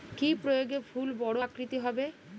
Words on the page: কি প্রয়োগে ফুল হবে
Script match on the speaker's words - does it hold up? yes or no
no